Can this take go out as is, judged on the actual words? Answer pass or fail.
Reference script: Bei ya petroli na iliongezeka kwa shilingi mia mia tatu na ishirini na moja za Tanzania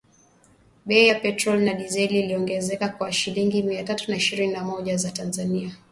fail